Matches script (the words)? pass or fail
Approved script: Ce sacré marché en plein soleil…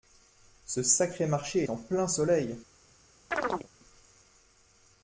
pass